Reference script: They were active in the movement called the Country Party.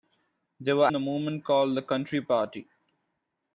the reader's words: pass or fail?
fail